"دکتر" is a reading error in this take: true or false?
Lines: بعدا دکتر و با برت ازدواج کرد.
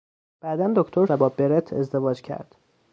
false